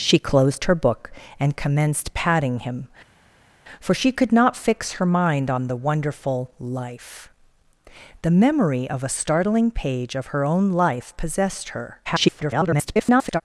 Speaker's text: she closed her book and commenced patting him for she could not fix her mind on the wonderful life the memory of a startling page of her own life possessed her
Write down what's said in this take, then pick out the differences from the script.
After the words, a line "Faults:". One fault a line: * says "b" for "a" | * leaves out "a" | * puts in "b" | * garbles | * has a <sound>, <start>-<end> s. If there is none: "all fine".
she closed her book and commenced patting him for she could not fix her mind on the wonderful life the memory of a startling page of her own life possessed her [garbled]
Faults:
* garbles